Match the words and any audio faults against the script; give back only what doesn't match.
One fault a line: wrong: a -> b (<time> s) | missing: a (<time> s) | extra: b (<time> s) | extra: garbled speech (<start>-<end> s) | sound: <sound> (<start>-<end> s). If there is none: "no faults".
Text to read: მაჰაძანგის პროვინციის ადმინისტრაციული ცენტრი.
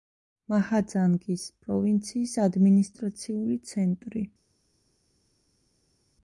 no faults